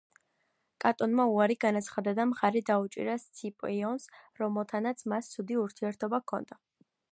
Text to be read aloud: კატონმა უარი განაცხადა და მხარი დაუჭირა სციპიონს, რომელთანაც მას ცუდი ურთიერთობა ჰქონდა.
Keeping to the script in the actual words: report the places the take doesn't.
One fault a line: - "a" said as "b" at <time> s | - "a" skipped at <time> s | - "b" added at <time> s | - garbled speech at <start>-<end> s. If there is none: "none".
none